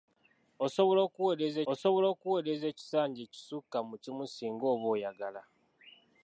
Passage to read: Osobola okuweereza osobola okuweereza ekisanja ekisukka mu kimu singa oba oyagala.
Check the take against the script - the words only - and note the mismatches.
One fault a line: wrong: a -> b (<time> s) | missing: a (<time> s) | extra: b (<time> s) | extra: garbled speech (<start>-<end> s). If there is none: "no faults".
no faults